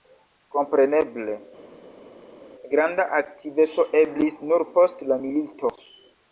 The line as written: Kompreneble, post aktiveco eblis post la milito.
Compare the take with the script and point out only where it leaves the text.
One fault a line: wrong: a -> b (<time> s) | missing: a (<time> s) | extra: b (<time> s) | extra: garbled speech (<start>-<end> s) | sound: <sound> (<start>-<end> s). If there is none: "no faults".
wrong: post -> granda (2.7 s)
extra: nur (4.5 s)